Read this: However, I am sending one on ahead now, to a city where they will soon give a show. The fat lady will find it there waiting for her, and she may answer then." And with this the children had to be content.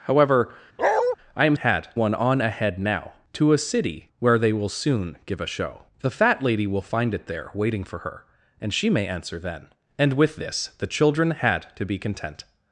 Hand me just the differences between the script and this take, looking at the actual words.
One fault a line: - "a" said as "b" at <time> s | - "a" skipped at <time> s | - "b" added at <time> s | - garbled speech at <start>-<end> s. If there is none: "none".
- "sending" said as "had" at 1.5 s